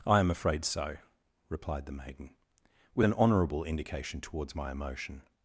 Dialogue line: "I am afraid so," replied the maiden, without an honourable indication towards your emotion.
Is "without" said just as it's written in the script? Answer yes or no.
no